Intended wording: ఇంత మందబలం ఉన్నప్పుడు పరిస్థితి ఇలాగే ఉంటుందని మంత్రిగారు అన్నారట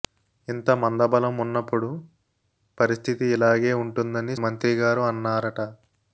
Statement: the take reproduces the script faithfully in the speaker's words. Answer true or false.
true